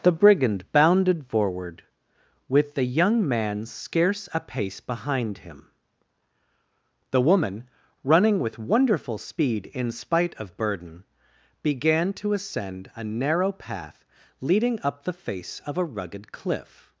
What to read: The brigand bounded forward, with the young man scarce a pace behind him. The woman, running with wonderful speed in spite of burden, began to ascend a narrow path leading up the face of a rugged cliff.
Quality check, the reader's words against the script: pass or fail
pass